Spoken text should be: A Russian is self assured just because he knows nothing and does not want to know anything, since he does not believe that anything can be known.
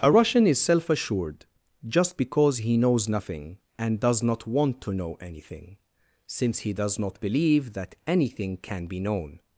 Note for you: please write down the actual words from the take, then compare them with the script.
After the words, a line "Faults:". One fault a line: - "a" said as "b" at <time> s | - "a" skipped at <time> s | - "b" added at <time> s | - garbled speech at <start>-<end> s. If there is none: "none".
A Russian is self assured just because he knows nothing and does not want to know anything, since he does not believe that anything can be known.
Faults:
none